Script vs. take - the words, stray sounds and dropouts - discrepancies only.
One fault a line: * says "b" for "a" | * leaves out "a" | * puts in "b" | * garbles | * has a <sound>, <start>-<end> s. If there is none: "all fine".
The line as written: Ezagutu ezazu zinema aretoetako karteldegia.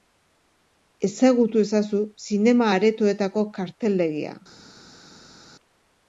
all fine